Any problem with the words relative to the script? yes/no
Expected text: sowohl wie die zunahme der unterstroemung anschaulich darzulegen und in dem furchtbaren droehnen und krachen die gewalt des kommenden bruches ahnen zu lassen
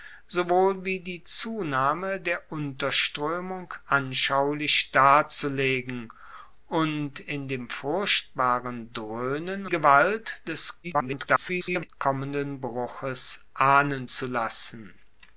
yes